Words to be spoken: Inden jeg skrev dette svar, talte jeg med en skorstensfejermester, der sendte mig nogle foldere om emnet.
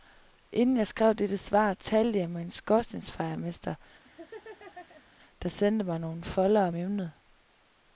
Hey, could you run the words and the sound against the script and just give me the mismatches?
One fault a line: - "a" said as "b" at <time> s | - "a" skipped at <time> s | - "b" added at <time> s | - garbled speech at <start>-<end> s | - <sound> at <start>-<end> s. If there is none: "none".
- laugh at 4.0-5.0 s